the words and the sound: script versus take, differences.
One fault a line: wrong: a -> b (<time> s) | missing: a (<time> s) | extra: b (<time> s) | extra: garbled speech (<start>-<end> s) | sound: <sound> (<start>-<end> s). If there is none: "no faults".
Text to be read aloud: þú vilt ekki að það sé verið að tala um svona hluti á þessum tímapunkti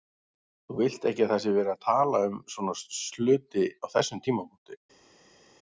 no faults